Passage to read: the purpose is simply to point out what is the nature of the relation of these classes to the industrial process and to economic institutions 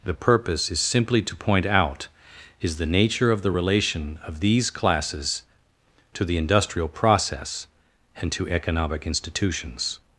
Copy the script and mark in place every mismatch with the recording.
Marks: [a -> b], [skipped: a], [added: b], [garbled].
the purpose is simply to point out [skipped: what] is the nature of the relation of these classes to the industrial process and to economic institutions